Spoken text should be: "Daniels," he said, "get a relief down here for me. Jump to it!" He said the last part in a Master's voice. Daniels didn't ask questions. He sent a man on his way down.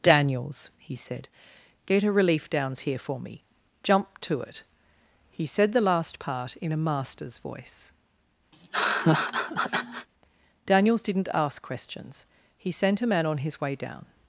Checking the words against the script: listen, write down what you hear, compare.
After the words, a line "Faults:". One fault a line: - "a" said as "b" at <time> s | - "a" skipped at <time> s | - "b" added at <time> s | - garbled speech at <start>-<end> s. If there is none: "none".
"Daniels," he said, "get a relief downs here for me. Jump to it!" He said the last part in a Master's voice. Daniels didn't ask questions. He sent a man on his way down.
Faults:
- "down" said as "downs" at 2.5 s